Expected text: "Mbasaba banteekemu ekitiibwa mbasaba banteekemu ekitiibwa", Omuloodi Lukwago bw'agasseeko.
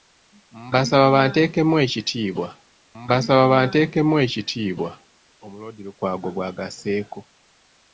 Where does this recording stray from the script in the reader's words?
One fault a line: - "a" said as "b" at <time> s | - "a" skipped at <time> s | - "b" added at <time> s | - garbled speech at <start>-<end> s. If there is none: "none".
none